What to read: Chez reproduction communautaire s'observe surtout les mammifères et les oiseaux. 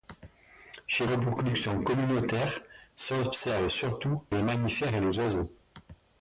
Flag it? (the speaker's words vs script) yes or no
no